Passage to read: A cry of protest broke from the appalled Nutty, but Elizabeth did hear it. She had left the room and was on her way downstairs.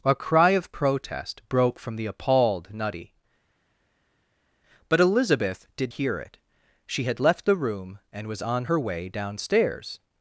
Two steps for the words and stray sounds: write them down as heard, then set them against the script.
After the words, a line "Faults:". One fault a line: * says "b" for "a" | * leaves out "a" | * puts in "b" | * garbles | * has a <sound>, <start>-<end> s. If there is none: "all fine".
A cry of protest broke from the appalled Nutty, but Elizabeth did hear it. She had left the room and was on her way downstairs.
Faults:
all fine